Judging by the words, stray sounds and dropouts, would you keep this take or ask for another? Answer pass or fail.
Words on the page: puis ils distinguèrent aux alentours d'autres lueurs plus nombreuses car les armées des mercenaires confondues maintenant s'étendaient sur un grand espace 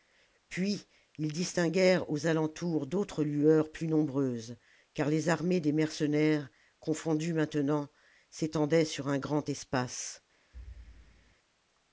fail